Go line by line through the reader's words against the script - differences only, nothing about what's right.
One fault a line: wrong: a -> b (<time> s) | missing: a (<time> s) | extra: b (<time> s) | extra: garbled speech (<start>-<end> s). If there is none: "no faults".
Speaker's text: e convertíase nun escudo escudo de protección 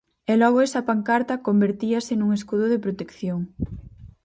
extra: logo esa pancarta (0.4 s)
missing: escudo (2.6 s)